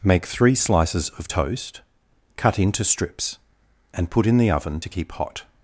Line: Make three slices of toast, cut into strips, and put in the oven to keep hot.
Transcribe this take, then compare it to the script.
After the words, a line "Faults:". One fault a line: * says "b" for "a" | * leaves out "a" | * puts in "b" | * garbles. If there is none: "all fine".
Make three slices of toast, cut into strips, and put in the oven to keep hot.
Faults:
all fine